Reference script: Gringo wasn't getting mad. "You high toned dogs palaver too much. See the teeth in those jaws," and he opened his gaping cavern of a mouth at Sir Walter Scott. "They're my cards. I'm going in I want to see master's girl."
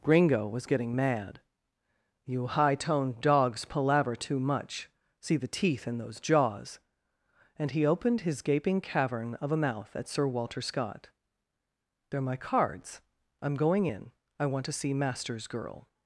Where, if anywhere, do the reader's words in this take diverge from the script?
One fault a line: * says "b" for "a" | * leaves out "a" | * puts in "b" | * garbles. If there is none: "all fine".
* says "was" for "wasn't"